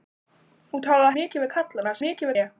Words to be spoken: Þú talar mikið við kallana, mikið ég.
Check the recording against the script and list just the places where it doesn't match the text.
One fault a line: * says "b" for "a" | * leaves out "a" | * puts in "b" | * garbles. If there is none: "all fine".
all fine